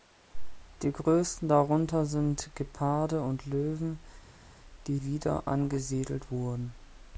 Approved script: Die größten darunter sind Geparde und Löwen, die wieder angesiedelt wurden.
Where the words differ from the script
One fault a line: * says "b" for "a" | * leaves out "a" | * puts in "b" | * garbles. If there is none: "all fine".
all fine